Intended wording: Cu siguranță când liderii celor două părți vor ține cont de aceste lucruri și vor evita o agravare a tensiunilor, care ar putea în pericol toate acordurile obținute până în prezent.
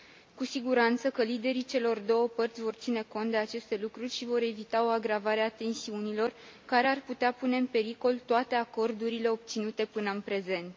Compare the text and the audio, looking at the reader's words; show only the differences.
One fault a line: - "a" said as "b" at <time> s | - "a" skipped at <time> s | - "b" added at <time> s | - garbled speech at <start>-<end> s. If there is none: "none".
- "când" said as "că" at 1.1 s
- "pune" added at 7.3 s